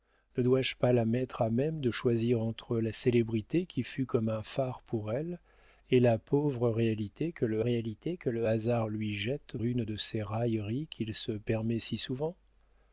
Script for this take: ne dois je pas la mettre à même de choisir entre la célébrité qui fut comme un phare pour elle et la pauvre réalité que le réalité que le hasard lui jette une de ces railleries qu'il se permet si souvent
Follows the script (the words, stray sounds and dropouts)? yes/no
yes